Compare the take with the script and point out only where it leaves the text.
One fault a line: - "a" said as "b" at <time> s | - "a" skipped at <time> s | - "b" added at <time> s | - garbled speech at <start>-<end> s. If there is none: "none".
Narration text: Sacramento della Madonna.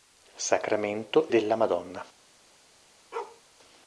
none